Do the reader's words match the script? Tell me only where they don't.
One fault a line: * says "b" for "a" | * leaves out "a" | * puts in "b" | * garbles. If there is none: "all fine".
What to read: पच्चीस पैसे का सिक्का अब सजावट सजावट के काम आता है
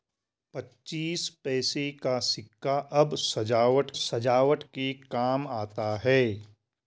all fine